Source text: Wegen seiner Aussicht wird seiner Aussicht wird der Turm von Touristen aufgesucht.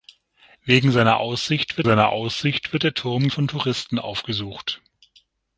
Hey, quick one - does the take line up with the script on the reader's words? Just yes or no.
yes